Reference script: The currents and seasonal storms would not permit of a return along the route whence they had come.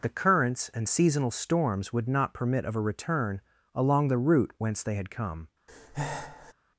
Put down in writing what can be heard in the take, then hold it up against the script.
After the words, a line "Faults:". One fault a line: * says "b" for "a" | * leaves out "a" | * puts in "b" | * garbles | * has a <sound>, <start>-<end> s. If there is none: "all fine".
The currents and seasonal storms would not permit of a return along the route whence they had come.
Faults:
* has a breath, 5.7-6.5 s